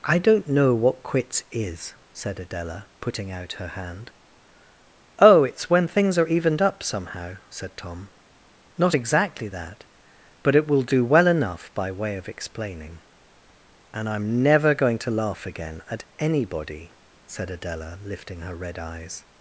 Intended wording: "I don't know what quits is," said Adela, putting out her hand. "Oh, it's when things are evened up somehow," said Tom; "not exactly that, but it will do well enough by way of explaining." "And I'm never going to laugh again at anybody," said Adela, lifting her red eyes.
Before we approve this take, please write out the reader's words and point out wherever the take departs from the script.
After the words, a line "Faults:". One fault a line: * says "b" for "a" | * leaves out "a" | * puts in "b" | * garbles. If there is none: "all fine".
"I don't know what quits is," said Adela, putting out her hand. "Oh, it's when things are evened up somehow," said Tom; "not exactly that, but it will do well enough by way of explaining." "And I'm never going to laugh again at anybody," said Adela, lifting her red eyes.
Faults:
all fine